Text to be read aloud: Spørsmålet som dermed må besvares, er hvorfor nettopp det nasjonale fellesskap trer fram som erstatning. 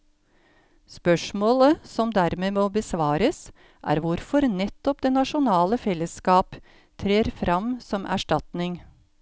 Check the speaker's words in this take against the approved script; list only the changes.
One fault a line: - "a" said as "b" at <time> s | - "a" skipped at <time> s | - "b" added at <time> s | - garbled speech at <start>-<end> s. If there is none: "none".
none